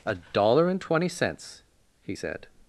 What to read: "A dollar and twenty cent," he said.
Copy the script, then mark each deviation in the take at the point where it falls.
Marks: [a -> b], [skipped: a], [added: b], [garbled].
"A dollar and twenty [cent," -> cents] he said.